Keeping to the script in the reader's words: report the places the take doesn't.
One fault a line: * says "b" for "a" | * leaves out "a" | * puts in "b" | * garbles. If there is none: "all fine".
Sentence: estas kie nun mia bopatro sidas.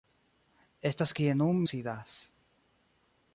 * leaves out "mia bopatro"